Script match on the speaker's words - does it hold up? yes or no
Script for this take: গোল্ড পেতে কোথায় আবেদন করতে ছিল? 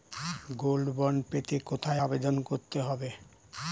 no